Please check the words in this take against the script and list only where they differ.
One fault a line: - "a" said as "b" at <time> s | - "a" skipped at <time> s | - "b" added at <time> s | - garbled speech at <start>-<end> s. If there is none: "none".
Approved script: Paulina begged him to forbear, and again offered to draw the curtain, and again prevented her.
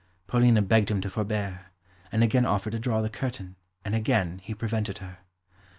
- "he" added at 4.4 s